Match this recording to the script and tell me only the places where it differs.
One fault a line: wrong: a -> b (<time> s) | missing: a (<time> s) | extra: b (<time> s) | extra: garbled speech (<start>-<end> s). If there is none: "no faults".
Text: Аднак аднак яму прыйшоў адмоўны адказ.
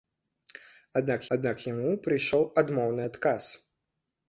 no faults